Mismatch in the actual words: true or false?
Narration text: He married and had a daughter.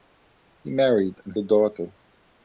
true